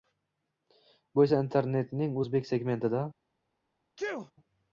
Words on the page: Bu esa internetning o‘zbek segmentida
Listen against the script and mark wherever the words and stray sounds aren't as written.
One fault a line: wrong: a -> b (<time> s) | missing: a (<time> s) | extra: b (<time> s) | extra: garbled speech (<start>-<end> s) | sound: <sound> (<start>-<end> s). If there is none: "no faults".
sound: sneeze (4.0-4.3 s)